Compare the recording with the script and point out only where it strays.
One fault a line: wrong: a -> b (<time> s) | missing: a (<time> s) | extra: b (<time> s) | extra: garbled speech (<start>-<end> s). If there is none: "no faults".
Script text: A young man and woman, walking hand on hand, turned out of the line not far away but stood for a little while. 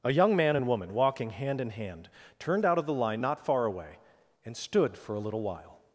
wrong: on -> in (1.6 s)
wrong: but -> and (4.4 s)